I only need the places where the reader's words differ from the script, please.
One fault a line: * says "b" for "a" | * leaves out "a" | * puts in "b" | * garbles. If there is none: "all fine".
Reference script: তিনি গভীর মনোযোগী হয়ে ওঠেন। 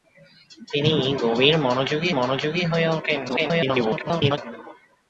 * puts in "মনোযোগী"
* garbles